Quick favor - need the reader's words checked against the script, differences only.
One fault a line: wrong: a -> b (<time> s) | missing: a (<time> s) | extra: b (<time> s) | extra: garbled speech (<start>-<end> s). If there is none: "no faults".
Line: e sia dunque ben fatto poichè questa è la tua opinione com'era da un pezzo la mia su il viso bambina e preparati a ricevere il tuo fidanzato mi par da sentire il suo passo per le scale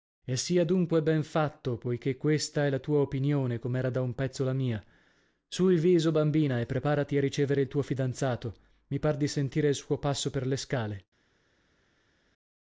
wrong: da -> di (9.2 s)